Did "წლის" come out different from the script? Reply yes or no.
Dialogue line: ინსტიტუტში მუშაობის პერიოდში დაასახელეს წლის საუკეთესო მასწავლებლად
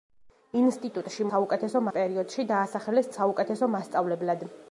yes